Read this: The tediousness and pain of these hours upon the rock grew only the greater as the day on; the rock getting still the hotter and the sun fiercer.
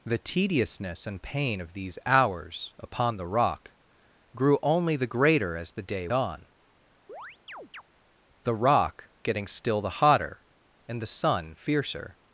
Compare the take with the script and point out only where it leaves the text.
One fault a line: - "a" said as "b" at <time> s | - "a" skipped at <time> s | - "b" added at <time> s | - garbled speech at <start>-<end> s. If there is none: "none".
none